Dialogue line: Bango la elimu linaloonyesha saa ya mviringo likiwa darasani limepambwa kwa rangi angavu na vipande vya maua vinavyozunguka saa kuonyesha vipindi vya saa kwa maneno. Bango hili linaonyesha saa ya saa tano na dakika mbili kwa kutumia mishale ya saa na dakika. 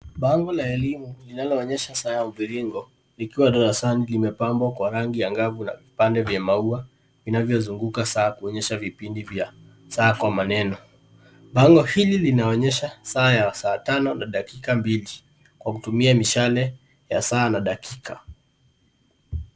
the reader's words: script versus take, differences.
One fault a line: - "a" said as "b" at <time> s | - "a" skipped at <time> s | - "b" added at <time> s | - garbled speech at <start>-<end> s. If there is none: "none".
none